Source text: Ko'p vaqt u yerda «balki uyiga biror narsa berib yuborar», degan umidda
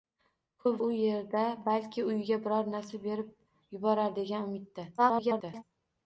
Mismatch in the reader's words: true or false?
true